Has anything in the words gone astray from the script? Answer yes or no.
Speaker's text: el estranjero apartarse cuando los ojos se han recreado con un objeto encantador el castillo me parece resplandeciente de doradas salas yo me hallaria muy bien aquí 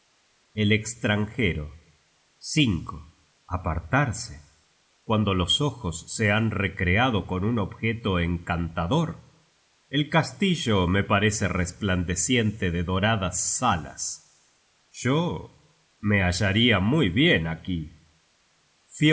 no